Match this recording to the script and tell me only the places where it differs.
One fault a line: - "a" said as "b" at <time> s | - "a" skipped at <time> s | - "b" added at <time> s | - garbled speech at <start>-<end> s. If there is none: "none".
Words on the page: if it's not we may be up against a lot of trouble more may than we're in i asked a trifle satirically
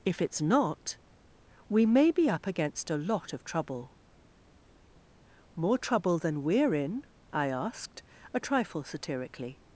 - "may" said as "trouble" at 5.8 s